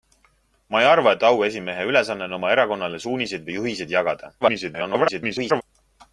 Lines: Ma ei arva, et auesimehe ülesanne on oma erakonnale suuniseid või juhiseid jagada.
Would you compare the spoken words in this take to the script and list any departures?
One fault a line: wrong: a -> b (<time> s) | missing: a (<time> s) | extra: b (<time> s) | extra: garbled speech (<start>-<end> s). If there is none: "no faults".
extra: garbled speech (4.4-5.6 s)